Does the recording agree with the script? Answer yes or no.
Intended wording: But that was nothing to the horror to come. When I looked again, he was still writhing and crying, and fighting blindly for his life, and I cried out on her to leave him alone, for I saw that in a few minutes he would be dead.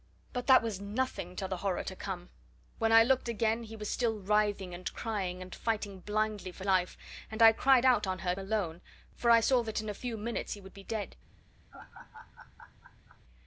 no